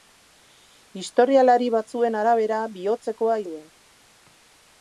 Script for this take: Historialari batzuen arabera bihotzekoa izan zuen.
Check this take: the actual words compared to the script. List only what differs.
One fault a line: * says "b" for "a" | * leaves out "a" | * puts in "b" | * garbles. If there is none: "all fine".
* leaves out "izan"